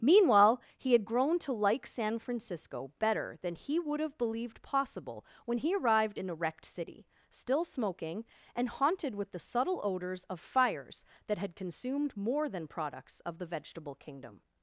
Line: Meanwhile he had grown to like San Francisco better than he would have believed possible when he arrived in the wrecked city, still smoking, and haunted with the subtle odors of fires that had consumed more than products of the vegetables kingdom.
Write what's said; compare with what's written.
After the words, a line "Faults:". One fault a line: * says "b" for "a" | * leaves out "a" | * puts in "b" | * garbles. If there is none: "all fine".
Meanwhile he had grown to like San Francisco better than he would have believed possible when he arrived in the wrecked city, still smoking, and haunted with the subtle odors of fires that had consumed more than products of the vegetable kingdom.
Faults:
* says "vegetable" for "vegetables"